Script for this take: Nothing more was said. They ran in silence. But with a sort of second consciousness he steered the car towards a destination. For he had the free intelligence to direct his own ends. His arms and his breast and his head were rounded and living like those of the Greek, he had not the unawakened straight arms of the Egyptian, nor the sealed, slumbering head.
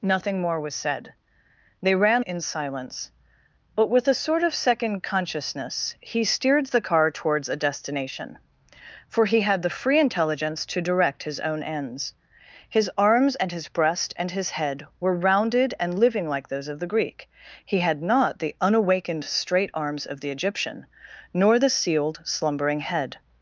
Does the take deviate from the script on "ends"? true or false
false